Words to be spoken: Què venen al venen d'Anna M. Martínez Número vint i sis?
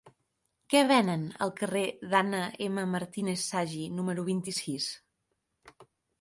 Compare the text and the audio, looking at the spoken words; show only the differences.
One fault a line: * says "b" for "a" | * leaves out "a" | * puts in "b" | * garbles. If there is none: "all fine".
* says "carrer" for "venen"
* puts in "Sagi"